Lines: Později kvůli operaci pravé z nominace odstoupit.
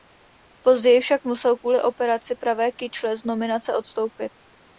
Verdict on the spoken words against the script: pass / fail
fail